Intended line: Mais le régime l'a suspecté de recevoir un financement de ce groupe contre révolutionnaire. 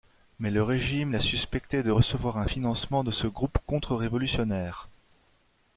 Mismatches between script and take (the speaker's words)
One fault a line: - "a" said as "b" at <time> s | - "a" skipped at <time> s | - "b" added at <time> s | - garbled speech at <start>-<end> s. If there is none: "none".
none